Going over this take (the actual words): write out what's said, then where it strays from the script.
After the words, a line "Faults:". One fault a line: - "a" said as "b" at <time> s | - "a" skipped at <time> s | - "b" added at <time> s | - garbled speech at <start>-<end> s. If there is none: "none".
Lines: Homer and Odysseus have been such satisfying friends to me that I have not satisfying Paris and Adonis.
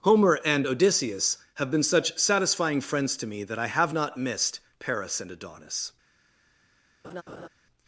Homer and Odysseus have been such satisfying friends to me that I have not missed Paris and Adonis.
Faults:
- "satisfying" said as "missed" at 4.2 s